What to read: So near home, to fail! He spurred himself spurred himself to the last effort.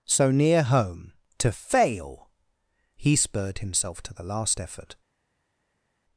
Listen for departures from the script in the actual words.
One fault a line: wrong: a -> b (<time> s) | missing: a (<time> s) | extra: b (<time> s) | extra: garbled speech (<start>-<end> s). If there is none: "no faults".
missing: spurred himself (4.0 s)